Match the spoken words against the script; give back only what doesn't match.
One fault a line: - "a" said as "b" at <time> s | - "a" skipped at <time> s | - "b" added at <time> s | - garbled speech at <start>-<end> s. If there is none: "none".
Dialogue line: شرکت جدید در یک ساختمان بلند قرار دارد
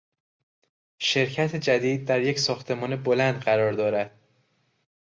none